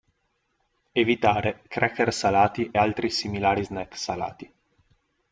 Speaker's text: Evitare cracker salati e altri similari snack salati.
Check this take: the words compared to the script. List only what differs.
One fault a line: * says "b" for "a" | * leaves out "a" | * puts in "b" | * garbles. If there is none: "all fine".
* leaves out "e"